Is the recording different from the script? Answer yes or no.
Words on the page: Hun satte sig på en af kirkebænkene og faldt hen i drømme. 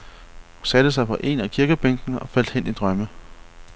no